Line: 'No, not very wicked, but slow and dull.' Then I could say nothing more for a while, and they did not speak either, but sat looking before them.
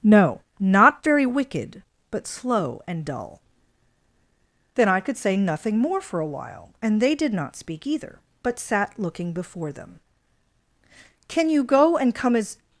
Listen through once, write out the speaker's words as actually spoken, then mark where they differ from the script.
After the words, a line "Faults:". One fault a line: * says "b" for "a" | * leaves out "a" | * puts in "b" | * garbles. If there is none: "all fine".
'No, not very wicked, but slow and dull.' Then I could say nothing more for a while, and they did not speak either, but sat looking before them. 'Can you go and come as
Faults:
* puts in "Can you go and come as"